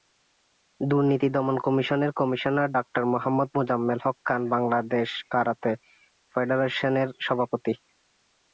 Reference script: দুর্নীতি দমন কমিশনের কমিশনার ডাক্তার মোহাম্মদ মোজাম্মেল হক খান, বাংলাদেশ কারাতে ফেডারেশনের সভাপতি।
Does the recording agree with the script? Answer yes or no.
yes